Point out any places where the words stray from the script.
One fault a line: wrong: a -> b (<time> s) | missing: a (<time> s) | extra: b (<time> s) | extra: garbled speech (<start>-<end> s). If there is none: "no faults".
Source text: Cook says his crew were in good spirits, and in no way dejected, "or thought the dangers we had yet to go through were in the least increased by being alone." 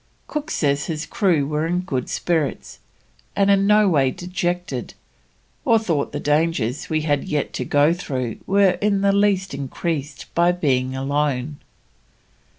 no faults